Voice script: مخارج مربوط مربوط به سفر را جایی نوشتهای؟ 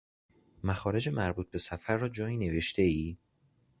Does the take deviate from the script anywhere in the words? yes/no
yes